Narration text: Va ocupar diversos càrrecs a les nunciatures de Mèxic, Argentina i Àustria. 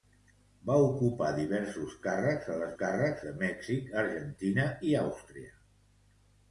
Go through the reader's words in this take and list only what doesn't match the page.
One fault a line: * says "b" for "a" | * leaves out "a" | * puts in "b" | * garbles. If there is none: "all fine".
* says "càrrecs" for "nunciatures"